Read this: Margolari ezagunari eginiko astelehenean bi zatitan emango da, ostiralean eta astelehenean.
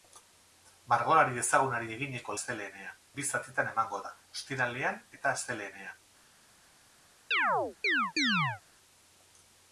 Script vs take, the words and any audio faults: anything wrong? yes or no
yes